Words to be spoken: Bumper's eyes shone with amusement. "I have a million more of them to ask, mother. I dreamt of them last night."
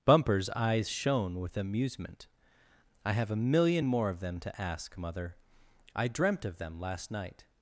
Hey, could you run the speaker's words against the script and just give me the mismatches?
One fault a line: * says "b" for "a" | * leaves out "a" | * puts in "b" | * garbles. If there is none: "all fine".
all fine